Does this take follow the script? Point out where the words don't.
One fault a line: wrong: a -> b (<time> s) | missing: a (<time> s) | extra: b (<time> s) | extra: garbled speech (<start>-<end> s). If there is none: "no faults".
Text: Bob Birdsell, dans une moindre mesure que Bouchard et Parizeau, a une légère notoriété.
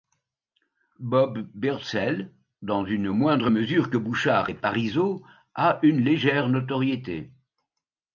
no faults